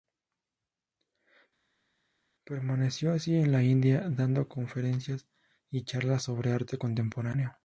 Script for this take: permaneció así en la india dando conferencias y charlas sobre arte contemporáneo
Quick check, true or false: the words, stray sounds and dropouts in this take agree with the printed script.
true